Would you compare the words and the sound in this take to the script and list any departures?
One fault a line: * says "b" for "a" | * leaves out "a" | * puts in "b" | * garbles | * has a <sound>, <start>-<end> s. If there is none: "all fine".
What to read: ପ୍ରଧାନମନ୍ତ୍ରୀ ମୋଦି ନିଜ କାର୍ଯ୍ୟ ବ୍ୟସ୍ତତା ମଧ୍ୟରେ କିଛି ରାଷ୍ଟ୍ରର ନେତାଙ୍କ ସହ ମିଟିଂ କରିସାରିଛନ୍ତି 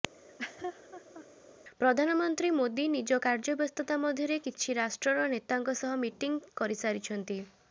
* has a laugh, 0.1-1.3 s